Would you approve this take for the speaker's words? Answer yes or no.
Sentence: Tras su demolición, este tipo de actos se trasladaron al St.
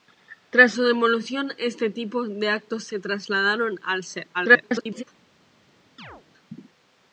no